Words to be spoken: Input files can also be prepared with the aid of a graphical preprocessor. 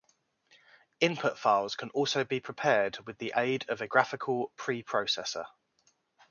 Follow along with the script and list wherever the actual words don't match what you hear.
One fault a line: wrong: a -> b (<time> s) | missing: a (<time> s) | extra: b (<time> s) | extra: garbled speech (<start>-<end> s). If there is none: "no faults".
no faults